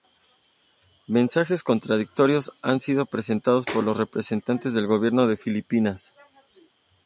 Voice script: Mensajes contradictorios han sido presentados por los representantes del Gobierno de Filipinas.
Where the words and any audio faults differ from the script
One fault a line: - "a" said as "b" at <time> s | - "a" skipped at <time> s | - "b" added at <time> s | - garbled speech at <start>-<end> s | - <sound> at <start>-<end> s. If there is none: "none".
none